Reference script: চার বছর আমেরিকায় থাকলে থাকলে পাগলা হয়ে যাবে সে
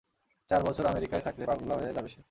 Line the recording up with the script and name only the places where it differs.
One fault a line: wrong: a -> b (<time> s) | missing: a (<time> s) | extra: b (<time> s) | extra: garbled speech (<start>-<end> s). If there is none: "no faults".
missing: থাকলে (1.4 s)